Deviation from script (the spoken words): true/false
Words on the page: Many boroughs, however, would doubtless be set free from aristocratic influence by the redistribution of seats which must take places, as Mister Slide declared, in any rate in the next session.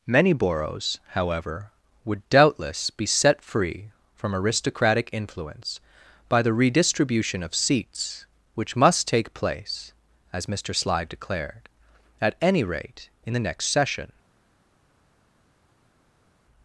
true